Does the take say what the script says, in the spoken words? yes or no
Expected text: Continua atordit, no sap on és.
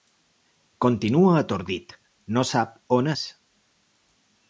yes